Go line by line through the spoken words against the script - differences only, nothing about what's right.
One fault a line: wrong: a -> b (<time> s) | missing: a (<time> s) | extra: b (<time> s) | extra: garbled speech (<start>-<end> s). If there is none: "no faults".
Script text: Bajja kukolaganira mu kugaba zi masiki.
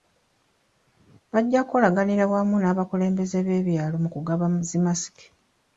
extra: wamu n'abakulembeze b'ebyalo (2.3 s)